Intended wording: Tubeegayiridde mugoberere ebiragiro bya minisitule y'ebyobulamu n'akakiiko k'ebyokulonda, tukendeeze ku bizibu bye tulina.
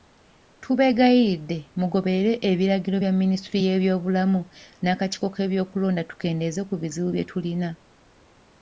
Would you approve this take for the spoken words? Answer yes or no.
yes